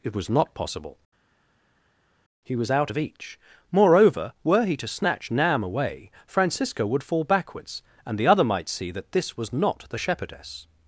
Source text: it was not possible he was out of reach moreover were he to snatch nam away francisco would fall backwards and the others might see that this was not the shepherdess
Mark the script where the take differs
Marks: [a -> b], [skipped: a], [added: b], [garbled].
it was not possible he was out of [reach -> each] moreover were he to snatch nam away francisco would fall backwards and the [others -> other] might see that this was not the shepherdess